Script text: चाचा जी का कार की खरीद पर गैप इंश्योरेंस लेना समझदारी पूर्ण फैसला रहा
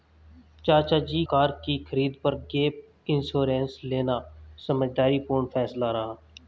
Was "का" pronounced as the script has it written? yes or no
no